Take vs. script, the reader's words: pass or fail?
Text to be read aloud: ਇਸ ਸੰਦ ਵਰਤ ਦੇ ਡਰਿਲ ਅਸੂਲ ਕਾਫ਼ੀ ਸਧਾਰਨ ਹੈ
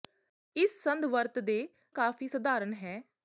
fail